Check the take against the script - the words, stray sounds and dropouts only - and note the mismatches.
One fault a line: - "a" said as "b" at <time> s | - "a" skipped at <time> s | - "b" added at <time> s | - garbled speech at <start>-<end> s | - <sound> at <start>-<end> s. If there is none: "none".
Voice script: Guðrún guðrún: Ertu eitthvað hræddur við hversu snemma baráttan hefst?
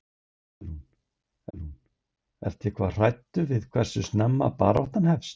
none